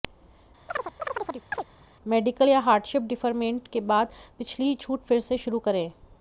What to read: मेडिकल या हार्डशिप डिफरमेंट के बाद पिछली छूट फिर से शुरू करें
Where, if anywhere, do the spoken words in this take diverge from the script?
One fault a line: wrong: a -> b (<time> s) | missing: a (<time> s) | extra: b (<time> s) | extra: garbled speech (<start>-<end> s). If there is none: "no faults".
no faults